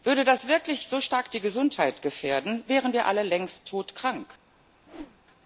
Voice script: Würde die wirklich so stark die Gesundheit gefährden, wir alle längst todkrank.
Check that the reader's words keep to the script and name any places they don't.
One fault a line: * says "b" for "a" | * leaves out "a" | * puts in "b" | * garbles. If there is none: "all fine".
* says "das" for "die"
* puts in "wären"